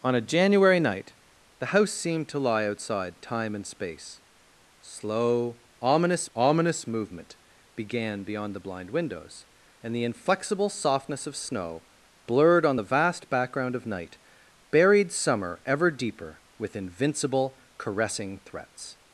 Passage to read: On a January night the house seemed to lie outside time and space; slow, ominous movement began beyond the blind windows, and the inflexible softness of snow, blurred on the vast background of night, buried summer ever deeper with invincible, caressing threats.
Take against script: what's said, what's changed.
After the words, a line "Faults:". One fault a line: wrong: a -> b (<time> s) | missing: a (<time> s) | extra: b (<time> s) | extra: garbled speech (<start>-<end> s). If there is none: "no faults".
On a January night the house seemed to lie outside time and space; slow, ominous ominous movement began beyond the blind windows, and the inflexible softness of snow, blurred on the vast background of night, buried summer ever deeper with invincible, caressing threats.
Faults:
extra: ominous (6.3 s)